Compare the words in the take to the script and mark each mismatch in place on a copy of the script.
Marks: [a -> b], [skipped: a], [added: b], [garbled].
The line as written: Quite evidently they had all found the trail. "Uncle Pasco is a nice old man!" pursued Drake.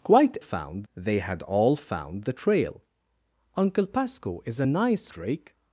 Quite [evidently -> found] they had all found the trail. "Uncle Pasco is a nice [skipped: old man!" pursued] Drake.